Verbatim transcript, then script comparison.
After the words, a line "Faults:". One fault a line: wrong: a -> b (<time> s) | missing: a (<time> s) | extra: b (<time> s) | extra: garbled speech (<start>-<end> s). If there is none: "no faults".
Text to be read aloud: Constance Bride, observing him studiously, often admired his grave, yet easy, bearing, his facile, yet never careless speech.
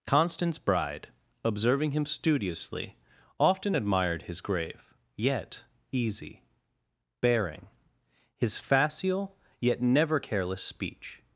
Constance Bride, observing him studiously, often admired his grave, yet easy, bearing, his facile, yet never careless speech.
Faults:
no faults